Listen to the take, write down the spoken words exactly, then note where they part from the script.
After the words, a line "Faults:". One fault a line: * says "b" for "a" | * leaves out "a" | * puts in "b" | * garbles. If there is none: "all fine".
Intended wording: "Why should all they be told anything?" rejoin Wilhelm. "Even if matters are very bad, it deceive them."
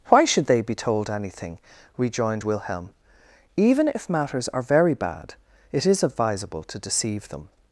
"Why should they be told anything?" rejoined Wilhelm. "Even if matters are very bad, it is advisable to deceive them."
Faults:
* leaves out "all"
* says "rejoined" for "rejoin"
* puts in "is advisable to"